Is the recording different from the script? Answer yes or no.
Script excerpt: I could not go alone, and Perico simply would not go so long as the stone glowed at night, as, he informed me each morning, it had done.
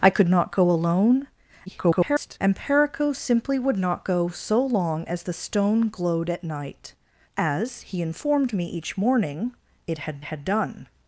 yes